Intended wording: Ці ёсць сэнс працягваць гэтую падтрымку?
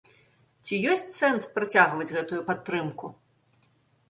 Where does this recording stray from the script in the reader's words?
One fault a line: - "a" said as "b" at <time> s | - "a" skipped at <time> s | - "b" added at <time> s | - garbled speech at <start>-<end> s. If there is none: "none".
none